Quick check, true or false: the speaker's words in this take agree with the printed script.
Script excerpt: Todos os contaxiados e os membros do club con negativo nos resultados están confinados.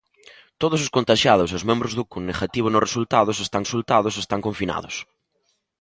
false